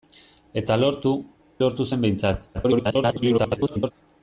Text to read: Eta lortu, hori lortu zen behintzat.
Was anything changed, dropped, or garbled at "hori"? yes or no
yes